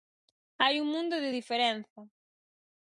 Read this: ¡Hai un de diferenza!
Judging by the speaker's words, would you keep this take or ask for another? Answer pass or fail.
fail